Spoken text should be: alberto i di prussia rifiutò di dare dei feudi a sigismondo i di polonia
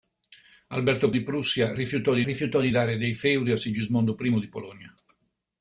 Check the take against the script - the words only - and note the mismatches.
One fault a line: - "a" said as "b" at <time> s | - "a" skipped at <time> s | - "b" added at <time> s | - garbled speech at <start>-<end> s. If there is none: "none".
- "i" skipped at 1.1 s
- "rifiutò di" added at 2.2 s